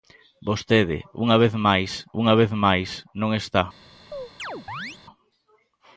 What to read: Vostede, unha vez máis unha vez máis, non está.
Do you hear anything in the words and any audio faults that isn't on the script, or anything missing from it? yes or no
yes